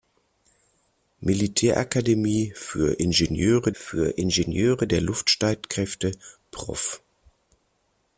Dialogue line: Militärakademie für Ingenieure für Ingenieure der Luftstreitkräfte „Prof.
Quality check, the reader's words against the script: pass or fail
pass